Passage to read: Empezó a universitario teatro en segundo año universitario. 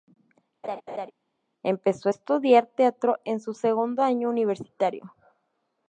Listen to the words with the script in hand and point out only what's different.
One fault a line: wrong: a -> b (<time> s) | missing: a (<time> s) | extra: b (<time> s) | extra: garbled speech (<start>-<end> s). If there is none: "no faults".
wrong: universitario -> estudiar (2.1 s)
extra: su (3.4 s)